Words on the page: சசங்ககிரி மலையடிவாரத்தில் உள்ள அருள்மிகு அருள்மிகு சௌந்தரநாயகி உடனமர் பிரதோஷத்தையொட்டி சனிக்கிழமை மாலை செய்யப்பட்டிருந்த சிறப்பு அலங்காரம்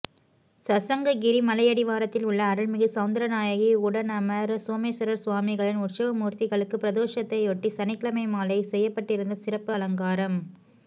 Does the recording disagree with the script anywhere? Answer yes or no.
yes